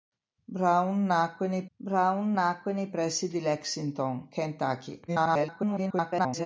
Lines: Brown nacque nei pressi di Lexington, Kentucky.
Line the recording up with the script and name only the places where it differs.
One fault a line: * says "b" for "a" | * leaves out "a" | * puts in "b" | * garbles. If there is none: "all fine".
* puts in "brown nacque nei"
* garbles